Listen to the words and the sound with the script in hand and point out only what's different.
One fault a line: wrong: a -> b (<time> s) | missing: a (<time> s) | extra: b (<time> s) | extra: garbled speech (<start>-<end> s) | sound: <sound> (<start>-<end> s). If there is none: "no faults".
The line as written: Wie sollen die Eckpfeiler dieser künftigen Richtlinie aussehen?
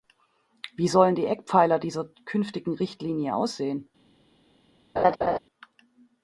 sound: laugh (5.0-5.4 s)